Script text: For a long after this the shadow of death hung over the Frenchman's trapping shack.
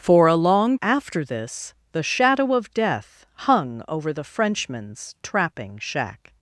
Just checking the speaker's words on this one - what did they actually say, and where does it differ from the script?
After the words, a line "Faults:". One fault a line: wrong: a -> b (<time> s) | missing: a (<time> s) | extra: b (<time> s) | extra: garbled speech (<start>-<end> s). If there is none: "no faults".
For a long after this the shadow of death hung over the Frenchman's trapping shack.
Faults:
no faults